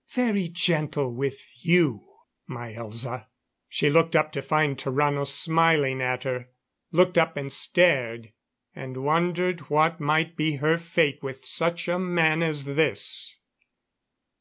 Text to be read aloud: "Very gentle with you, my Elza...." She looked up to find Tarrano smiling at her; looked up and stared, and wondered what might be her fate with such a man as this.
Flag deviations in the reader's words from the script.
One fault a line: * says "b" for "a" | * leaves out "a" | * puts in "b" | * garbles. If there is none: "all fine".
all fine